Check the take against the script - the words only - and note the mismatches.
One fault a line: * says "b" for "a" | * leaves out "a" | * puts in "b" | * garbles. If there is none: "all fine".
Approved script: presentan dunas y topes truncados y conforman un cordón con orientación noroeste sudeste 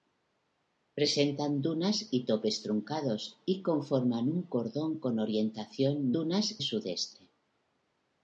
* says "dunas" for "noroeste"